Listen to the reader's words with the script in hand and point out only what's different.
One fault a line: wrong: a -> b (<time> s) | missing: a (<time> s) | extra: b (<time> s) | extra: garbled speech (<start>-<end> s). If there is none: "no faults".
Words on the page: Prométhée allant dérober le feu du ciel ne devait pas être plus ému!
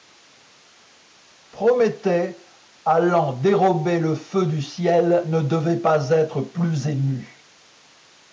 no faults